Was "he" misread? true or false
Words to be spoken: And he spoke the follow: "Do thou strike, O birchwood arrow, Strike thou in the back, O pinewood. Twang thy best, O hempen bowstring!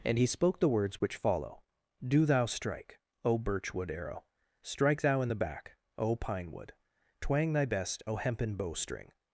false